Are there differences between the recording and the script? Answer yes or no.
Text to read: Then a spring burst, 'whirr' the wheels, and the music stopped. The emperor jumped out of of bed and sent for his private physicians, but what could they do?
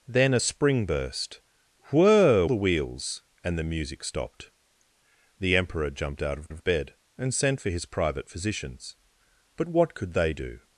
no